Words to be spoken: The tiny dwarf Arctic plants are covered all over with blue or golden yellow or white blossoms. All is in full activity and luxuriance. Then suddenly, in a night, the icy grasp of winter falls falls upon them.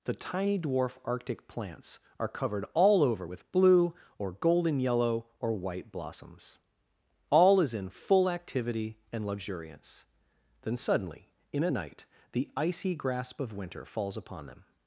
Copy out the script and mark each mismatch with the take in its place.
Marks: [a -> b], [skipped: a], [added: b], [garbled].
The tiny dwarf Arctic plants are covered all over with blue or golden yellow or white blossoms. All is in full activity and luxuriance. Then suddenly, in a night, the icy grasp of winter falls [skipped: falls] upon them.